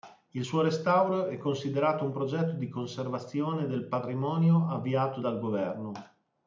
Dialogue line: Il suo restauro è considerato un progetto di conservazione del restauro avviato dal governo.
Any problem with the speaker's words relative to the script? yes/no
yes